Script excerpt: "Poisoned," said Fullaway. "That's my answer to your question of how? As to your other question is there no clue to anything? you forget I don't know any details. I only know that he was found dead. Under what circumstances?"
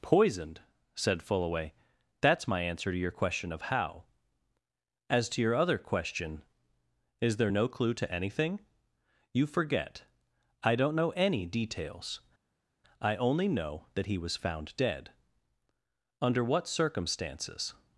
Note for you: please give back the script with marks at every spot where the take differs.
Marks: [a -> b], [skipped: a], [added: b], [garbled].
"Poisoned," said Fullaway. "That's my answer to your question of how? As to your other question is there no clue to anything? you forget I don't know any details. I only know that he was found dead. Under what circumstances?"